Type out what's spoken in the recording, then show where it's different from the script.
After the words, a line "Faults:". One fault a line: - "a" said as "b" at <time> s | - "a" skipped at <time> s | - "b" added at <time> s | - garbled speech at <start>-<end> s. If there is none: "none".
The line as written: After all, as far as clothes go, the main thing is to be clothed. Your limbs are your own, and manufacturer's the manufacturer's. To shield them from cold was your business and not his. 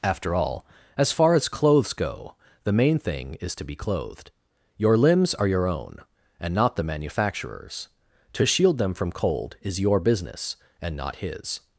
After all, as far as clothes go, the main thing is to be clothed. Your limbs are your own, and not the manufacturer's. To shield them from cold is your business and not his.
Faults:
- "manufacturer's" said as "not" at 6.5 s
- "was" said as "is" at 9.6 s